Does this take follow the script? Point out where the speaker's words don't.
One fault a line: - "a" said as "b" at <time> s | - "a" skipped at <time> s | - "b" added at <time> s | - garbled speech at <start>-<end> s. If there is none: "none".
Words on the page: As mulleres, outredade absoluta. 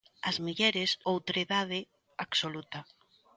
none